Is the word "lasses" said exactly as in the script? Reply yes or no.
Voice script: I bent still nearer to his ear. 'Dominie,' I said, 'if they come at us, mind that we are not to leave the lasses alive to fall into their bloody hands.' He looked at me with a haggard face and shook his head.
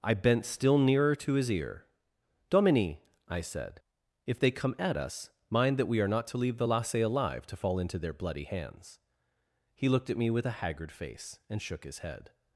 no